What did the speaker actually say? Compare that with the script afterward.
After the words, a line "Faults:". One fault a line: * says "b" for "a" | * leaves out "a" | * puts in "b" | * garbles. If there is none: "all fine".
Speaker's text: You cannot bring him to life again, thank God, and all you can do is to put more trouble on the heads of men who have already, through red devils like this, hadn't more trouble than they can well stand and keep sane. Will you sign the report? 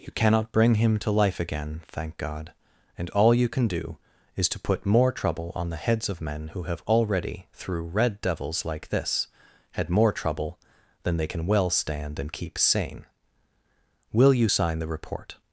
You cannot bring him to life again, thank God, and all you can do is to put more trouble on the heads of men who have already, through red devils like this, had more trouble than they can well stand and keep sane. Will you sign the report?
Faults:
* says "had" for "hadn't"